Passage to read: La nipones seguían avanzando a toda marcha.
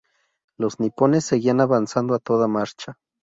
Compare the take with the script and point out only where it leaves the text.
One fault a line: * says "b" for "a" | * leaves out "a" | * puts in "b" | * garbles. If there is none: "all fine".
* says "Los" for "La"